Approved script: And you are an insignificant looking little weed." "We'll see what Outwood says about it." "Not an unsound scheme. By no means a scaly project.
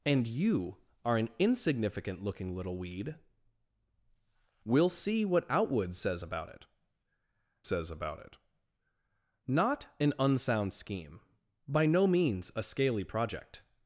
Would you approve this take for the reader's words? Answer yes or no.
no